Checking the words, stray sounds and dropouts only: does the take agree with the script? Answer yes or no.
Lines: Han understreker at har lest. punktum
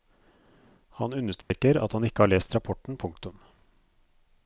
no